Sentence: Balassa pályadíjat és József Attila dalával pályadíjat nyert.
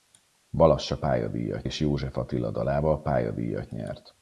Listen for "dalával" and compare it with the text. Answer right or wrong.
right